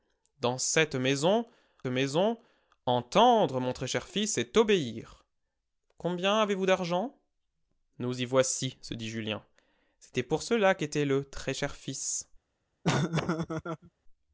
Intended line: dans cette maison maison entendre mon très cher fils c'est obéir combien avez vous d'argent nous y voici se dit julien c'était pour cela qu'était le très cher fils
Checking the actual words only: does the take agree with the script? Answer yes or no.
yes